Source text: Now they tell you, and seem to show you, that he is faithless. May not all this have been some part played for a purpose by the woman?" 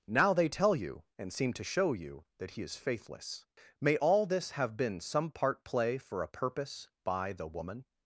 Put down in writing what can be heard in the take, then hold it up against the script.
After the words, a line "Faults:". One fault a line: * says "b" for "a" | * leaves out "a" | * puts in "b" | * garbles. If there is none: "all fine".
Now they tell you, and seem to show you, that he is faithless. May all this have been some part play for a purpose by the woman?"
Faults:
* leaves out "not"
* says "play" for "played"